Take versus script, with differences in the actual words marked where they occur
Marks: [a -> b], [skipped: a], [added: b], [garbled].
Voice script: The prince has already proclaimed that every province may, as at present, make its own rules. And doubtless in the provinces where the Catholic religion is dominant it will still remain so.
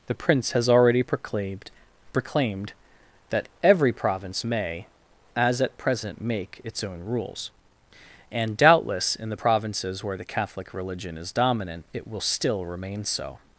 The prince has already proclaimed [added: proclaimed] that every province may, as at present, make its own rules. And doubtless in the provinces where the Catholic religion is dominant it will still remain so.